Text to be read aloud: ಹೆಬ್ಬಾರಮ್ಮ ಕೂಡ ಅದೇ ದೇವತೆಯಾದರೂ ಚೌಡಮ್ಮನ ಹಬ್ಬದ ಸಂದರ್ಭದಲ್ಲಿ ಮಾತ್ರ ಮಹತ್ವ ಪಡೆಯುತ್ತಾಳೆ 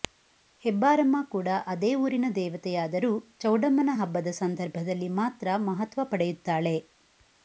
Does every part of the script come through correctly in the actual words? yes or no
no